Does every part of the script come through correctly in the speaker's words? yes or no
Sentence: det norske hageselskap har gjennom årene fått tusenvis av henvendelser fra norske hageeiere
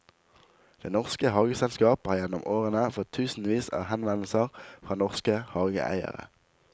yes